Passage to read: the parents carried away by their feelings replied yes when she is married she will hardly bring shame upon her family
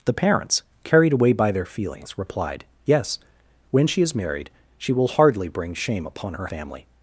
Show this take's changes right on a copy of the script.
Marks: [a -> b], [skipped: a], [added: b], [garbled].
the parents carried away by their feelings replied yes when she is married she will hardly bring shame upon her family